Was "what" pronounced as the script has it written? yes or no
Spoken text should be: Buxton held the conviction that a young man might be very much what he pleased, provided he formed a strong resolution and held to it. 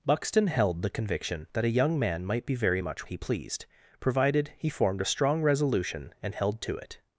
no